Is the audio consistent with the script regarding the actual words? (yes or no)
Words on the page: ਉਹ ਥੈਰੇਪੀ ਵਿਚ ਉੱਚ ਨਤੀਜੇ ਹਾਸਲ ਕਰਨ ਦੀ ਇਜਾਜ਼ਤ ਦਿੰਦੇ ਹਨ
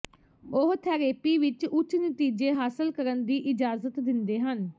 yes